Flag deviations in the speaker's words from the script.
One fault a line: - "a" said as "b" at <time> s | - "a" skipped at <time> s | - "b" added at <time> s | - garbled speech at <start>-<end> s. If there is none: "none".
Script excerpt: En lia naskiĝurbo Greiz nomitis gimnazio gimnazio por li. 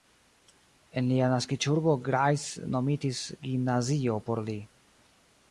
- "gimnazio" skipped at 4.2 s